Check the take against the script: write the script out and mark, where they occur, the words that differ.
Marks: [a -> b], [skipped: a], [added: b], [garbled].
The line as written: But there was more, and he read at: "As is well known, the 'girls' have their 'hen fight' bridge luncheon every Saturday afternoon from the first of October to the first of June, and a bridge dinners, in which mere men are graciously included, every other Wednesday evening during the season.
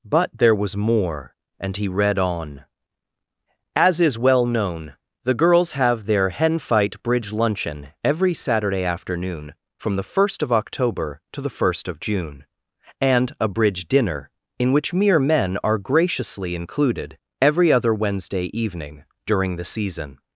But there was more, and he read [at: -> on] "As is well known, the 'girls' have their 'hen fight' bridge luncheon every Saturday afternoon from the first of October to the first of June, and a bridge [dinners, -> dinner] in which mere men are graciously included, every other Wednesday evening during the season.